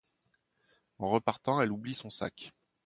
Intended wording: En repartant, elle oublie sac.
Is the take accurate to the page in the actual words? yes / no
no